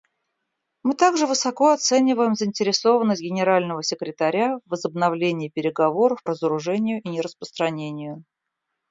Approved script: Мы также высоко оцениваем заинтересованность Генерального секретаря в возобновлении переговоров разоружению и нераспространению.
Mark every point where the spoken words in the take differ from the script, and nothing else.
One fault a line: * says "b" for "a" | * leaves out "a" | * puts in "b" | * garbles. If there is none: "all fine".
all fine